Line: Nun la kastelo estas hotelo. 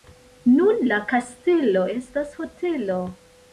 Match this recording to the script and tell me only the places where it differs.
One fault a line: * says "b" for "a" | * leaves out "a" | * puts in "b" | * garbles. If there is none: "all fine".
all fine